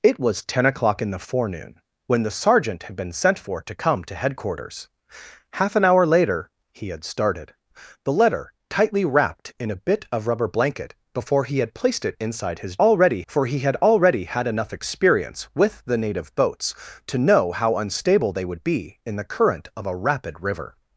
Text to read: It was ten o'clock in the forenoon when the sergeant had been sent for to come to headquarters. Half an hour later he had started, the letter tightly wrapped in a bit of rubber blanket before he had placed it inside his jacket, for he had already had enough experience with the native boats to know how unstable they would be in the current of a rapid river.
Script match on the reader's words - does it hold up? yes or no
no